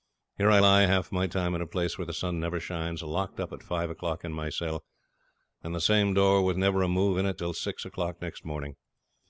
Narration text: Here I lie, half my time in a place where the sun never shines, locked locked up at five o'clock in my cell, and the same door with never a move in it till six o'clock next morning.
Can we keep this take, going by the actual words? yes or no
no